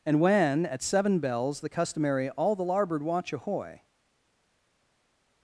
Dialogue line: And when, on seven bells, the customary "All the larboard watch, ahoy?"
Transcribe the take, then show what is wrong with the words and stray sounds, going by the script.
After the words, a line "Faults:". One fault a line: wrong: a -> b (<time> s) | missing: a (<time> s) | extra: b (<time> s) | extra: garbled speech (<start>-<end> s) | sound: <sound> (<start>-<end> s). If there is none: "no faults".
And when, at seven bells, the customary "All the larboard watch, ahoy?"
Faults:
wrong: on -> at (0.7 s)